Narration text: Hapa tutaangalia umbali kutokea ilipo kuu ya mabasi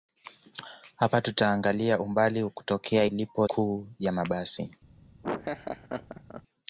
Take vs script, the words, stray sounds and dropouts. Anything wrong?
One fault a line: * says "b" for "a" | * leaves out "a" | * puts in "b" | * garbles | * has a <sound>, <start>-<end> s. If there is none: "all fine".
* has a laugh, 5.2-6.4 s